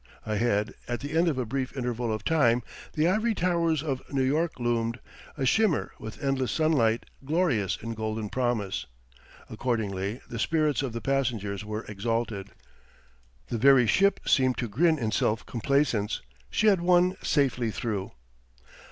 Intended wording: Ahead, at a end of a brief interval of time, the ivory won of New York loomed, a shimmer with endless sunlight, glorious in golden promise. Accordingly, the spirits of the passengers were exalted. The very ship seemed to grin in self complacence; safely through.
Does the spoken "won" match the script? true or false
false